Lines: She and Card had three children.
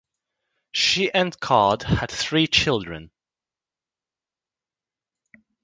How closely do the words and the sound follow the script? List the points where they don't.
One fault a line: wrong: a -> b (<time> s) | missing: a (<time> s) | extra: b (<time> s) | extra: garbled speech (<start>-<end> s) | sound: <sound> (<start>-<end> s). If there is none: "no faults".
no faults